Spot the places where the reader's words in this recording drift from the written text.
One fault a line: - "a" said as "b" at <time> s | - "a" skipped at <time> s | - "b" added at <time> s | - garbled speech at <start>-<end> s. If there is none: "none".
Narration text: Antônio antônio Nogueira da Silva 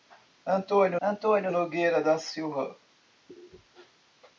none